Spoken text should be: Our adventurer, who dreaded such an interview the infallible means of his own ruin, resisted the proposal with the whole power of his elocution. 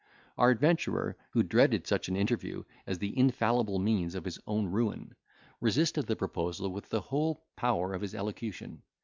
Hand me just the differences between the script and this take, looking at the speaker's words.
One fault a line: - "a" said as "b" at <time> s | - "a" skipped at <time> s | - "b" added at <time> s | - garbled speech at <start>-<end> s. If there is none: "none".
- "as" added at 2.9 s